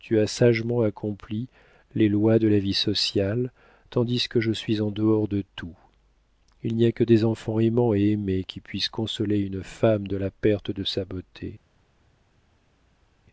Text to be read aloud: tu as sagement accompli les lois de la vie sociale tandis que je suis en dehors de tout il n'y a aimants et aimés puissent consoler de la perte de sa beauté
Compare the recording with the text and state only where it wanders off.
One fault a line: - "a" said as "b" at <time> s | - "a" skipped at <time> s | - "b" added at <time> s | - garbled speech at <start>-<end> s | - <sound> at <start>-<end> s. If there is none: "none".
- "que des enfants" added at 6.9 s
- "qui" added at 8.4 s
- "une femme" added at 9.4 s